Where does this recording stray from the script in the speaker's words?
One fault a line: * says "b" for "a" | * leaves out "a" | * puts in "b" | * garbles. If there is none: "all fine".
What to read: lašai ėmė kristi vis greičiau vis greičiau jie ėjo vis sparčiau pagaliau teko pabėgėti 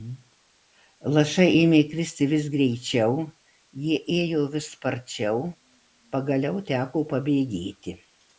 * leaves out "vis greičiau"